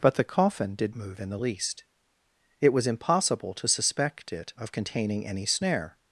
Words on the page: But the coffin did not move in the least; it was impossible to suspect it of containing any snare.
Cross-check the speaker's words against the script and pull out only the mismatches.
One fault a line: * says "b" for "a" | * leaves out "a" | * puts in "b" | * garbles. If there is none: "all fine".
* leaves out "not"